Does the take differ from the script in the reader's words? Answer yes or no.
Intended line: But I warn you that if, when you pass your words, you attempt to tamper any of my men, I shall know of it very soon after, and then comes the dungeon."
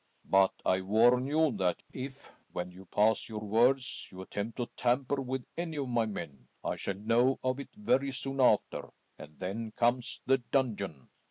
yes